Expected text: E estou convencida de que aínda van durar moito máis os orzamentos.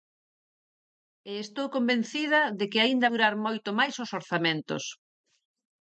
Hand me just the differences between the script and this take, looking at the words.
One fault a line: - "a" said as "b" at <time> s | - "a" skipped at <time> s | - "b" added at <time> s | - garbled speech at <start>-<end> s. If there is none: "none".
- "van" skipped at 3.1 s